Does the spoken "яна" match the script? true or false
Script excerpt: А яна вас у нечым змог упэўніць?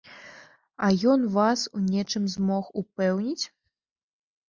false